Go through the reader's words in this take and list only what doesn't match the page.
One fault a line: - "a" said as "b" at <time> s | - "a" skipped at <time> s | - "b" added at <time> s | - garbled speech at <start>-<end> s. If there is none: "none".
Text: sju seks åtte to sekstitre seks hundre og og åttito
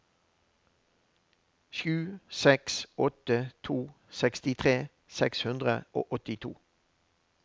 - "og" skipped at 6.1 s